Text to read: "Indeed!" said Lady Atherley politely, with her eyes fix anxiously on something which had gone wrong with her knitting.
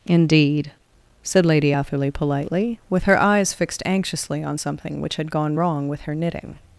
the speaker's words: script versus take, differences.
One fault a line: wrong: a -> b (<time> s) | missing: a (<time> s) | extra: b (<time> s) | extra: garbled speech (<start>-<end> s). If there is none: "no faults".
wrong: fix -> fixed (3.5 s)